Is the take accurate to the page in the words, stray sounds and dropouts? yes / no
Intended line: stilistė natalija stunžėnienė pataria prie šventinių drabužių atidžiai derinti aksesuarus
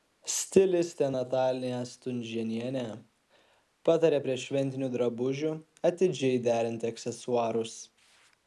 yes